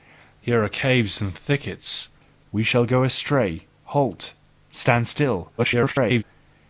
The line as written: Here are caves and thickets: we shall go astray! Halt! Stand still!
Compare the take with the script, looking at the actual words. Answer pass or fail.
fail